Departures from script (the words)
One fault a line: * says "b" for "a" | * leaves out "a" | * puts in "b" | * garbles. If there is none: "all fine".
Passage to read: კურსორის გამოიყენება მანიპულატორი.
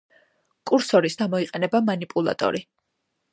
all fine